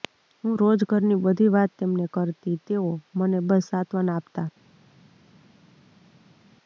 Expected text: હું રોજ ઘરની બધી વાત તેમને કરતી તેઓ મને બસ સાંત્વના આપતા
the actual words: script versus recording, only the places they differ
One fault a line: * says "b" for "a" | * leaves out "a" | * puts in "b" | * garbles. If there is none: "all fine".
all fine